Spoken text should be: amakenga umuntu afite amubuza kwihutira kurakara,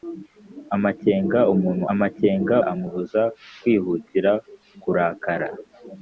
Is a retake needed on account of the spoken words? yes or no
yes